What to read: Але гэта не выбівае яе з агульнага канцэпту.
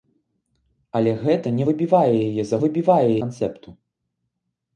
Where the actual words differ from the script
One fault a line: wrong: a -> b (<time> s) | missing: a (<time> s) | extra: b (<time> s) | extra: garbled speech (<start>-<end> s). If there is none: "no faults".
wrong: агульнага -> выбівае (2.6 s)